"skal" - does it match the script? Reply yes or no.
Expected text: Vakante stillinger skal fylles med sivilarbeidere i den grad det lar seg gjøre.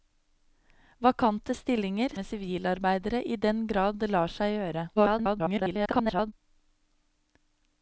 no